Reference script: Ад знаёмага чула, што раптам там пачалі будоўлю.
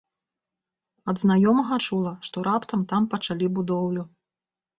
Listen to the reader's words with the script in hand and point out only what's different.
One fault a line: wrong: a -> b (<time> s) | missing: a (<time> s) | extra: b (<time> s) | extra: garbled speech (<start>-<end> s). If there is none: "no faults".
no faults